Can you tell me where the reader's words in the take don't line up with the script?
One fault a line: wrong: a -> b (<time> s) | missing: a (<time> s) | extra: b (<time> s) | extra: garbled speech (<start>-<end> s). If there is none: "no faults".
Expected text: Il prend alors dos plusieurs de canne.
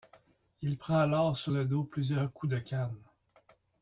extra: sur le (1.4 s)
extra: coups (2.3 s)